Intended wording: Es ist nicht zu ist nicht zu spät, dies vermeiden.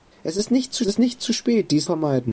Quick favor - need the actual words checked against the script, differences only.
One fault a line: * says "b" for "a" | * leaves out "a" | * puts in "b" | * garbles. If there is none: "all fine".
all fine